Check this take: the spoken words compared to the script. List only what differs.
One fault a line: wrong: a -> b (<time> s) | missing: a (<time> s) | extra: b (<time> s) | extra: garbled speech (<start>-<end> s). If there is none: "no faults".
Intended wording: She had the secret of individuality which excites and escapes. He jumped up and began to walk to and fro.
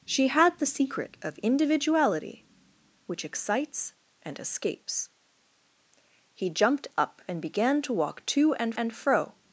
extra: and (8.7 s)